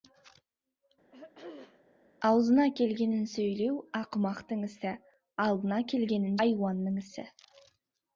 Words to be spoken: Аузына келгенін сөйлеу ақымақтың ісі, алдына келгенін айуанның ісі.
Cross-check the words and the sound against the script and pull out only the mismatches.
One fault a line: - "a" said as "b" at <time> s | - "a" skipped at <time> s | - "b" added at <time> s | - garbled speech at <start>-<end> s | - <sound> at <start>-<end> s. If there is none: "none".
- throat clearing at 1.1-1.8 s